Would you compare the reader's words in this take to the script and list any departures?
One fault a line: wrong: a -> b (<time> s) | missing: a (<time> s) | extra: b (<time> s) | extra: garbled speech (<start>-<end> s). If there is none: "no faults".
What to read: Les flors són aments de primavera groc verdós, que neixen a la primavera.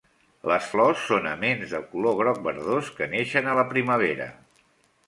wrong: primavera -> color (2.0 s)